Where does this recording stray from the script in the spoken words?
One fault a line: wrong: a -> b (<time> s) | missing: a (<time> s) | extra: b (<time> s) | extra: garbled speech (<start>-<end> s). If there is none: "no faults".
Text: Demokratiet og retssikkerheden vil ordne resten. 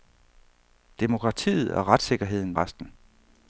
missing: vil ordne (2.6 s)